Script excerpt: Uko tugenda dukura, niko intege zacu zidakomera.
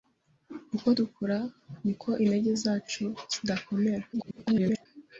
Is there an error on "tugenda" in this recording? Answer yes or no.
yes